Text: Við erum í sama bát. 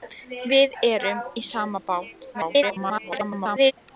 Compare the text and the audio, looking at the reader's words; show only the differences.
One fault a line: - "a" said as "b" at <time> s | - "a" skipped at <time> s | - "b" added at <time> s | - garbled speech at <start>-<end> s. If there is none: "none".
- garbled speech at 2.3-3.7 s